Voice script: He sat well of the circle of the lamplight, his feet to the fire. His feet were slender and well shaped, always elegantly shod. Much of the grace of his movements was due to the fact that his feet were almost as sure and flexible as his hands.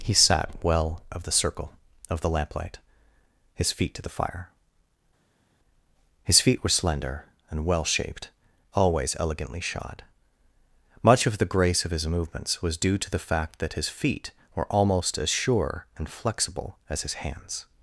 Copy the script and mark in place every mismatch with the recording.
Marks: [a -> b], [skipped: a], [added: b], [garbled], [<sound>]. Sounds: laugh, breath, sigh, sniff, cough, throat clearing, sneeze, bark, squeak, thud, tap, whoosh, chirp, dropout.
He sat well of the circle of the lamplight, his feet to the fire. His feet were slender and well shaped, always elegantly shod. Much of the grace of his movements was due to the fact that his feet were almost as sure and flexible as his hands.